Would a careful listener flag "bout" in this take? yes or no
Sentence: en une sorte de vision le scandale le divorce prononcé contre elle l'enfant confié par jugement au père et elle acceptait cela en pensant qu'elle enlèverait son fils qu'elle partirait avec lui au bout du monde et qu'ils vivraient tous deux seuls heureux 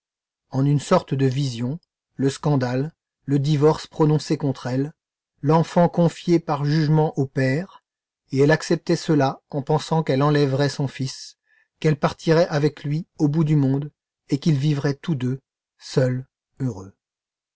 no